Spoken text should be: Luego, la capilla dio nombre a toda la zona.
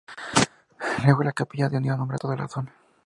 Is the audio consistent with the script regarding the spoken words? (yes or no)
yes